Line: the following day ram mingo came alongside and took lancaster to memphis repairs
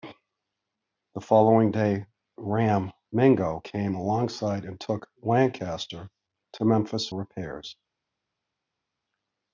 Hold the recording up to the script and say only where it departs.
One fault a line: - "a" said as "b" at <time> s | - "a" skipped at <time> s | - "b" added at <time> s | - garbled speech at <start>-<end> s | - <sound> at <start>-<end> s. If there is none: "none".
none